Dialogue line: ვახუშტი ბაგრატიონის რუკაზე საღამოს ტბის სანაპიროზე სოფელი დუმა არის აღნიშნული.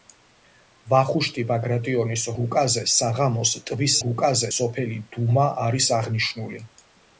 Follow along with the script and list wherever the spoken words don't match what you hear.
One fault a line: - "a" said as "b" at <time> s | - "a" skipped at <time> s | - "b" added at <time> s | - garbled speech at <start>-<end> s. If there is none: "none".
- "სანაპიროზე" said as "რუკაზე" at 4.0 s